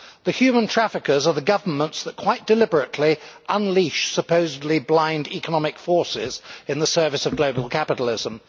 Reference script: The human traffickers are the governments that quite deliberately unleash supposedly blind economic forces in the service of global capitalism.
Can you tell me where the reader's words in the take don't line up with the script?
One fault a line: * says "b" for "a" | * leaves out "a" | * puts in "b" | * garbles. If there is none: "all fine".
all fine